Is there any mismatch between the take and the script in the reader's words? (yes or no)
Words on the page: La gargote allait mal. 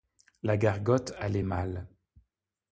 no